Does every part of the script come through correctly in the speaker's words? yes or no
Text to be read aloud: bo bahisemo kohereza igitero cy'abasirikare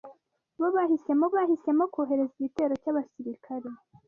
no